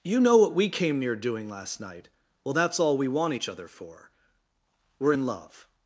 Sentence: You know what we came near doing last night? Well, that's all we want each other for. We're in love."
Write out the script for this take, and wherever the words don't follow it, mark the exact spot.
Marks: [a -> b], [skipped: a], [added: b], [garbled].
You know what we came near doing last night? Well, that's all we want each other for. We're in love."